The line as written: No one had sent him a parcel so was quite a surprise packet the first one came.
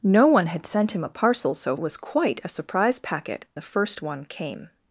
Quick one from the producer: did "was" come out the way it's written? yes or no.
yes